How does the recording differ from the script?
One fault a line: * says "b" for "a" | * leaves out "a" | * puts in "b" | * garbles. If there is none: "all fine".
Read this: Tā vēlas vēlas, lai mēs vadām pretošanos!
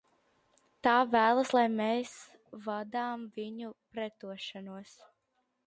* leaves out "vēlas"
* puts in "viņu"